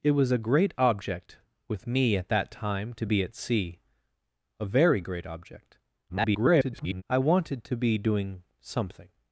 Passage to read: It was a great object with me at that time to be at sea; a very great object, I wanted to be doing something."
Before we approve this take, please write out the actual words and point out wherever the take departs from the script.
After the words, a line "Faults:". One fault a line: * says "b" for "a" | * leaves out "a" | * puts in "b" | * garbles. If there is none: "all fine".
It was a great object with me at that time to be at sea; a very great object, [garbled] I wanted to be doing something."
Faults:
* garbles